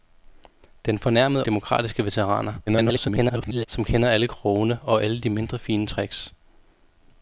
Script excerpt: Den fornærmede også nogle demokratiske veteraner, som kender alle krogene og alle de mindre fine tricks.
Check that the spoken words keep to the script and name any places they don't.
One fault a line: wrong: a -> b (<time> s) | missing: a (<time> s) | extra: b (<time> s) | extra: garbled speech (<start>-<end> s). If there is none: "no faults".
missing: også nogle (1.4 s)
extra: garbled speech (2.7-3.7 s)